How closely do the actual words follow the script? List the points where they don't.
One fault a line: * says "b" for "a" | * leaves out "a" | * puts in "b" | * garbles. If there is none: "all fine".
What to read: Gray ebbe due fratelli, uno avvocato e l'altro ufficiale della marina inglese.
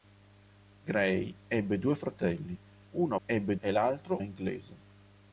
* says "ebbe" for "avvocato"
* leaves out "ufficiale della marina"